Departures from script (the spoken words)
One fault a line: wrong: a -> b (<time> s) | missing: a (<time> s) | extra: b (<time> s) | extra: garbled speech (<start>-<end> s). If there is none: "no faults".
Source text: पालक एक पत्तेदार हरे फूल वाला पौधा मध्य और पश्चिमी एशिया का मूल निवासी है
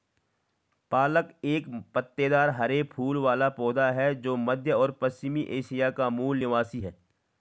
extra: है जो (3.9 s)